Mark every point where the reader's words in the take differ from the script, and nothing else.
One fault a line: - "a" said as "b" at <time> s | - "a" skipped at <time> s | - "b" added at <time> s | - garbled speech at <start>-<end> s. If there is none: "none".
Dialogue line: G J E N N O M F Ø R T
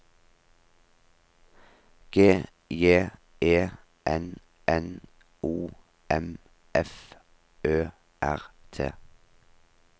none